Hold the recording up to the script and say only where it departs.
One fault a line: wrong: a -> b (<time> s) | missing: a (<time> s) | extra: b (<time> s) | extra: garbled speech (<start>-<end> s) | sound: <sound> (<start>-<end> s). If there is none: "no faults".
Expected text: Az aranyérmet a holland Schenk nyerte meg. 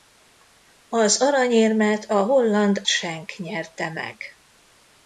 no faults